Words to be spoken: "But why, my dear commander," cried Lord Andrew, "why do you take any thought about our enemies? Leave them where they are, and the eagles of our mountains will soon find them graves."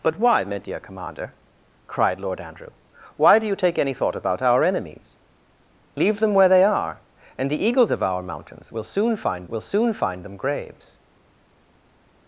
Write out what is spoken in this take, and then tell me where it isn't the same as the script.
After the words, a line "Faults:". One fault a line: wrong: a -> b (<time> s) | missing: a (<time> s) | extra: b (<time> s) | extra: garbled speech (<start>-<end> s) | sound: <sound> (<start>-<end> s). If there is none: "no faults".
"But why, my dear commander," cried Lord Andrew, "why do you take any thought about our enemies? Leave them where they are, and the eagles of our mountains will soon find will soon find them graves."
Faults:
extra: will soon find (9.5 s)